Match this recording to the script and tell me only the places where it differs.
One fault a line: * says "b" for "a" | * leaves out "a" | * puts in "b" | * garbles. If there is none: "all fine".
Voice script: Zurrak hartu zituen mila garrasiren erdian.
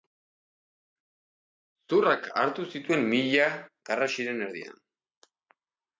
all fine